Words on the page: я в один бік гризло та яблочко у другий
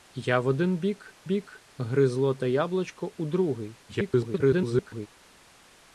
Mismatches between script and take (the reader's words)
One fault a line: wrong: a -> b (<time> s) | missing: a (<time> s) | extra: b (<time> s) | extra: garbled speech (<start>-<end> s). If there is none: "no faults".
extra: бік (1.2 s)
extra: garbled speech (3.9-5.1 s)